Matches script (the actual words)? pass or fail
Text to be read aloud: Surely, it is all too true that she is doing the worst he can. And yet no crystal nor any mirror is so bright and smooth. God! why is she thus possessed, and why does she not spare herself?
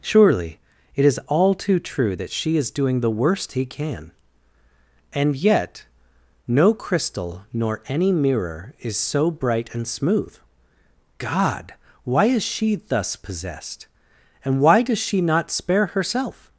pass